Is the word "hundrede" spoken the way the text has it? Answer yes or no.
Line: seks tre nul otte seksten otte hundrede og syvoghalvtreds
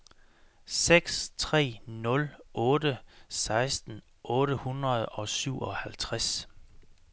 yes